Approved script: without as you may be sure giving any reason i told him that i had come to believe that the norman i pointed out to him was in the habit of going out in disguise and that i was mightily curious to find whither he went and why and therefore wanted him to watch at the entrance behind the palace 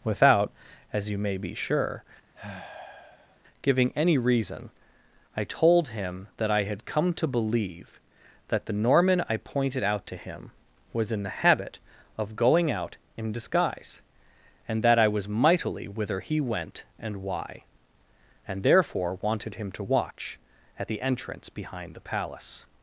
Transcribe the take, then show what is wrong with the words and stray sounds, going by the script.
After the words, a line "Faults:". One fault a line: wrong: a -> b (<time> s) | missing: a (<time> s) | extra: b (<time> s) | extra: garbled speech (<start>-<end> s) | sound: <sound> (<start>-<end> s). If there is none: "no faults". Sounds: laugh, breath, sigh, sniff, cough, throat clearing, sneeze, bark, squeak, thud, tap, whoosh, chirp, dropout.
without as you may be sure giving any reason i told him that i had come to believe that the norman i pointed out to him was in the habit of going out in disguise and that i was mightily whither he went and why and therefore wanted him to watch at the entrance behind the palace
Faults:
sound: sigh (2.3-3.4 s)
missing: curious to find (15.9 s)